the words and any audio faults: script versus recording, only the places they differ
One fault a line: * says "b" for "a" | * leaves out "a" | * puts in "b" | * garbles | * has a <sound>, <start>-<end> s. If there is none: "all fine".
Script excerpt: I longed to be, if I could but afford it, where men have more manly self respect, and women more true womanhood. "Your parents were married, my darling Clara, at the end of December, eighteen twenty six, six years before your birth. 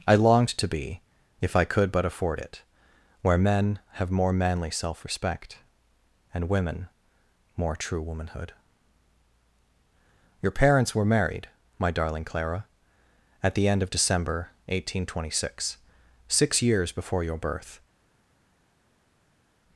all fine